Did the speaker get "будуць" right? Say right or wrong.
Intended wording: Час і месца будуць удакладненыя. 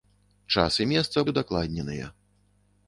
wrong